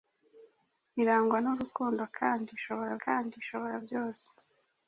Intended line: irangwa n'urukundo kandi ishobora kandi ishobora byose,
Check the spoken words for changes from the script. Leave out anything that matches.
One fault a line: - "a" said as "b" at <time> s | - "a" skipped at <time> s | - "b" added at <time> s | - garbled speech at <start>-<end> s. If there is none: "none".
none